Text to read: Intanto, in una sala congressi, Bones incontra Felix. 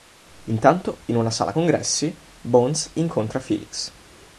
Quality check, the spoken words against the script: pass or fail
pass